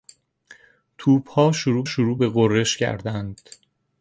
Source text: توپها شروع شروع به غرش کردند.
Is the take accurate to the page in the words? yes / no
yes